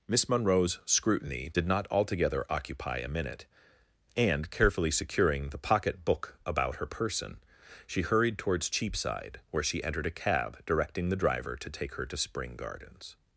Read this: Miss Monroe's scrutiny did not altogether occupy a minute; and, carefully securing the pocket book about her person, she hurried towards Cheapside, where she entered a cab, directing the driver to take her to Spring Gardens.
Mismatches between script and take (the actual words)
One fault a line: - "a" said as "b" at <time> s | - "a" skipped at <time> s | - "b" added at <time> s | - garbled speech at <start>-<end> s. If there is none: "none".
none